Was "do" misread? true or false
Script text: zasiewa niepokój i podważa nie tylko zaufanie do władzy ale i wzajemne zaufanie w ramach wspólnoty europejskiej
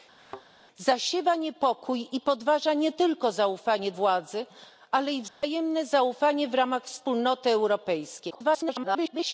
true